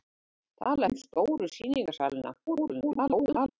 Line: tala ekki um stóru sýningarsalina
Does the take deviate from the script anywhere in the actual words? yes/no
yes